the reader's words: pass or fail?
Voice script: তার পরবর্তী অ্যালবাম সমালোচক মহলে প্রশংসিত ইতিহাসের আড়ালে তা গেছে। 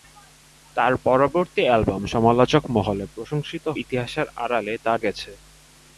pass